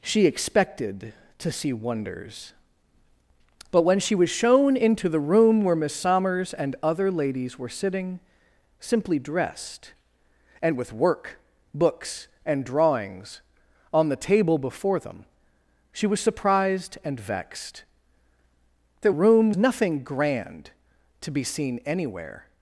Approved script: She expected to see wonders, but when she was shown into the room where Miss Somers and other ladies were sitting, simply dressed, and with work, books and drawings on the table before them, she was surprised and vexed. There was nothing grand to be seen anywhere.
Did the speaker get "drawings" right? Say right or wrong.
right